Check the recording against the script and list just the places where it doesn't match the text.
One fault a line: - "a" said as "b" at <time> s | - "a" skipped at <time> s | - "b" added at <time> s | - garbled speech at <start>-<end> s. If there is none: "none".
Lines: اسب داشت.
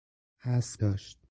none